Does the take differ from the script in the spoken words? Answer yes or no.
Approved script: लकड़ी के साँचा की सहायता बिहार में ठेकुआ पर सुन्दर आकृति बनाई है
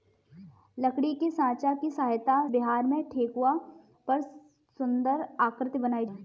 no